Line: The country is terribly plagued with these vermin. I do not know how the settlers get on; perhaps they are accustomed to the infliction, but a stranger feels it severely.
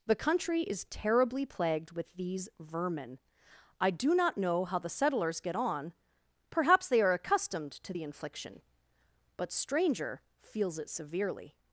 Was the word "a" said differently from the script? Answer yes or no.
yes